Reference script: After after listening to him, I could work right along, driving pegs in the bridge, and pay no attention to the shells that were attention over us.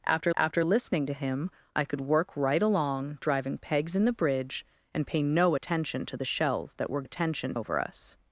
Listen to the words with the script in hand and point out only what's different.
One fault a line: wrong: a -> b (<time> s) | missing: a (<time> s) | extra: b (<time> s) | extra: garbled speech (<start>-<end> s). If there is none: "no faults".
no faults